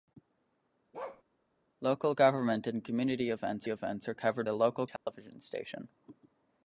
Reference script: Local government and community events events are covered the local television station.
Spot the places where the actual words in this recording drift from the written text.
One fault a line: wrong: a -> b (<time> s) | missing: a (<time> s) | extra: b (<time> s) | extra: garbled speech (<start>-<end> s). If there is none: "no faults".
no faults